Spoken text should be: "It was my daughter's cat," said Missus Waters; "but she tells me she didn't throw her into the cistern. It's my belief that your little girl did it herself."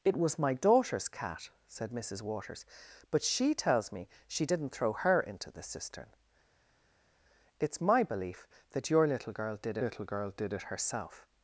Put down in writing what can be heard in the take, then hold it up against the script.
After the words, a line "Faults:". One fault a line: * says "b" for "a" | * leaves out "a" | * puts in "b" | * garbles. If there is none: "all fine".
"It was my daughter's cat," said Missus Waters; "but she tells me she didn't throw her into the cistern. It's my belief that your little girl did little girl did it herself."
Faults:
* puts in "little girl did"